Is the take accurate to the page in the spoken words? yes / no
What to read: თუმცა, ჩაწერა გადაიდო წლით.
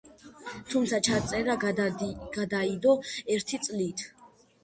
no